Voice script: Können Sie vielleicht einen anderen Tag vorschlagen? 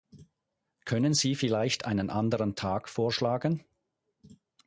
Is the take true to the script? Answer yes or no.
yes